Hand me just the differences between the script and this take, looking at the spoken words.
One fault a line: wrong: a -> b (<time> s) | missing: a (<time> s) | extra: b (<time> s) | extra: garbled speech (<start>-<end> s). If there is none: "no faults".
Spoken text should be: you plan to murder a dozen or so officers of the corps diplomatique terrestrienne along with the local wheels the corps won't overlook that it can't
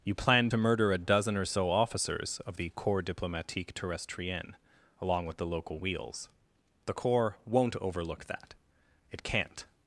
no faults